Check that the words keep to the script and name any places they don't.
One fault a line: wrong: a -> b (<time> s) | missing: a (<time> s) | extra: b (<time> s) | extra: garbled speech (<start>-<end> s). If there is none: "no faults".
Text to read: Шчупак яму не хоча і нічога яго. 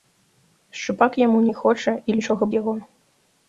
no faults